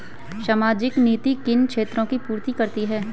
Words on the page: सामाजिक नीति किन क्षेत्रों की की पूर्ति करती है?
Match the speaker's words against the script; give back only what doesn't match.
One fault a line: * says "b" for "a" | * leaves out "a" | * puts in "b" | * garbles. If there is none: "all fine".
* leaves out "की"